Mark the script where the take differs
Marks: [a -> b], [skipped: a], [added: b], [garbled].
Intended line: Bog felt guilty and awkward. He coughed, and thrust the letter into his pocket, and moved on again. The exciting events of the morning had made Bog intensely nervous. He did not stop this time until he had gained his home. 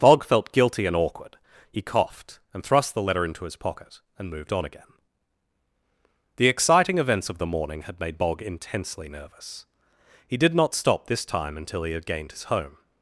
Bog felt guilty and awkward. He coughed, and thrust the letter into his pocket, and moved on again. The exciting events of the morning had made Bog intensely nervous. He did not stop this time until he had gained his home.